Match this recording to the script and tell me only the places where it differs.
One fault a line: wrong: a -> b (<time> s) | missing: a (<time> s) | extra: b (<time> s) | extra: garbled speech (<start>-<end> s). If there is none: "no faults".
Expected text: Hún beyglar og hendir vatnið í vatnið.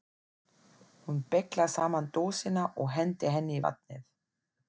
extra: saman dósina (1.8 s)
wrong: vatnið -> henni (3.4 s)